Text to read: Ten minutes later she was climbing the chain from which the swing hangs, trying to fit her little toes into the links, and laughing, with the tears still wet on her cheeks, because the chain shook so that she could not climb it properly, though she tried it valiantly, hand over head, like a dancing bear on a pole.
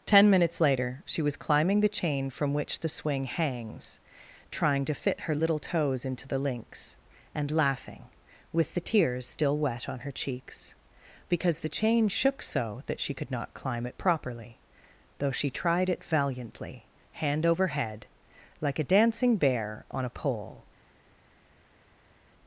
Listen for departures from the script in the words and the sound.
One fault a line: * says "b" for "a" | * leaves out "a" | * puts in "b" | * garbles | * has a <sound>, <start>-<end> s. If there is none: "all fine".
all fine